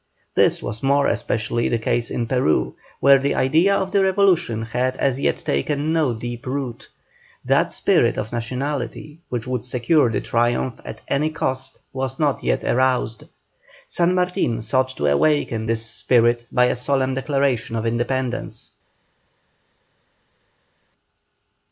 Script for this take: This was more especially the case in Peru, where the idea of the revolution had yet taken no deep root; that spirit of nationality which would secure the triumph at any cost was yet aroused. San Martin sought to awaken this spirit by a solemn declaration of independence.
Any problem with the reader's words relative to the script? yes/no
yes